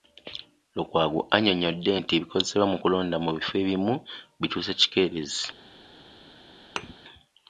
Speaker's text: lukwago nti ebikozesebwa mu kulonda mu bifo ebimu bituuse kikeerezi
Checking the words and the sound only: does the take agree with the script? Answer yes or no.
no